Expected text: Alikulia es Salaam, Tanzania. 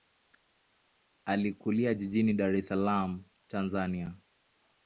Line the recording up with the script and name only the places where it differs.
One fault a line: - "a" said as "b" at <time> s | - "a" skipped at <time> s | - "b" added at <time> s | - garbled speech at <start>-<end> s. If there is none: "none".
- "jijini Dar" added at 1.9 s